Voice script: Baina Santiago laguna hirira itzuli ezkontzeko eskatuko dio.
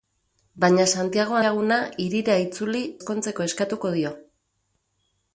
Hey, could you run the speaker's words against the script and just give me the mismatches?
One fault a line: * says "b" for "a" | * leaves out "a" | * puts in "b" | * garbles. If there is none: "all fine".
all fine